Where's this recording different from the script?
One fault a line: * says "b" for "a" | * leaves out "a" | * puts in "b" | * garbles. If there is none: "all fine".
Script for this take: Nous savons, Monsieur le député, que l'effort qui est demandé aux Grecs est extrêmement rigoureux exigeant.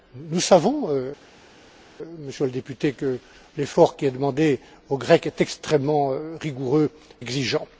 all fine